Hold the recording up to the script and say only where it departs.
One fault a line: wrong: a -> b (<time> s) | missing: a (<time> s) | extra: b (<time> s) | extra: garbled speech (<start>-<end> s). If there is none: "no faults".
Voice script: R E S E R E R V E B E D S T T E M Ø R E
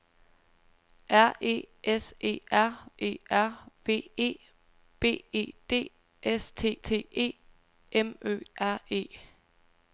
no faults